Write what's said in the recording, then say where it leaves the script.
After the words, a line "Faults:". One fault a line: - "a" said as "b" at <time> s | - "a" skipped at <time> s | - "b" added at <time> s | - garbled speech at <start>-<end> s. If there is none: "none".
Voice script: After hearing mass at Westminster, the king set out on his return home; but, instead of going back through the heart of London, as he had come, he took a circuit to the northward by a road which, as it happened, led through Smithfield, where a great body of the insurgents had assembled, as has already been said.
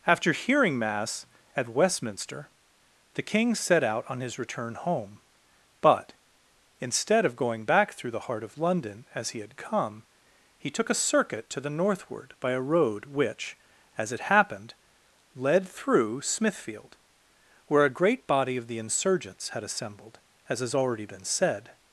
After hearing mass at Westminster, the king set out on his return home; but, instead of going back through the heart of London, as he had come, he took a circuit to the northward by a road which, as it happened, led through Smithfield, where a great body of the insurgents had assembled, as has already been said.
Faults:
none